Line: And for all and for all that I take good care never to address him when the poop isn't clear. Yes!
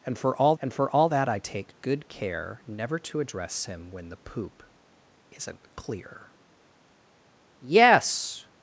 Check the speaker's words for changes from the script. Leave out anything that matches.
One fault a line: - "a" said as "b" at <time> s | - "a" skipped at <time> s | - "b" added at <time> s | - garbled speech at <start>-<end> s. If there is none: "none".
none